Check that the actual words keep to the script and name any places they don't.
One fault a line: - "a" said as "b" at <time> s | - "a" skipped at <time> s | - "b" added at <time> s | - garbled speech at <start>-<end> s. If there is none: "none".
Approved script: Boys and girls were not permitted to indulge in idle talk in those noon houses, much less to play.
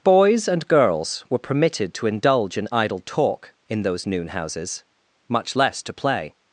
- "not" skipped at 1.4 s